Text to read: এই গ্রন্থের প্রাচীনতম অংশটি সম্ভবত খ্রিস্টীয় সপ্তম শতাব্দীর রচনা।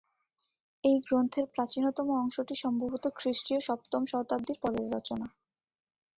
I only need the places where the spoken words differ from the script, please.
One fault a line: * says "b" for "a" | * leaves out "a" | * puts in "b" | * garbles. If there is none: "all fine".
* puts in "পরের"